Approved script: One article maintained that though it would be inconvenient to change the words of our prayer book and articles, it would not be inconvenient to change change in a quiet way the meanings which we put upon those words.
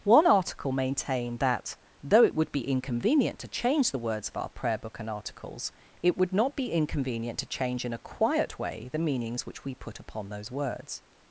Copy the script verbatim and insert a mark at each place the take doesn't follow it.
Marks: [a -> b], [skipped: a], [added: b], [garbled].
One article maintained that though it would be inconvenient to change the words of our prayer book and articles, it would not be inconvenient to change [skipped: change] in a quiet way the meanings which we put upon those words.